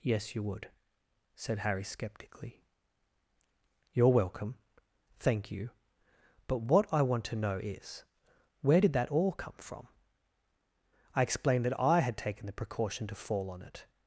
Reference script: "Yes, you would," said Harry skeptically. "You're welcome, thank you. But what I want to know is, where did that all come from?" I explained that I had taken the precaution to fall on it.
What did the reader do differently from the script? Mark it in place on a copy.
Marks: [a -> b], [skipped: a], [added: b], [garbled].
"Yes, you would," said Harry skeptically. "You're welcome, thank you. But what I want to know is, where did that all come from?" I explained that I had taken the precaution to fall on it.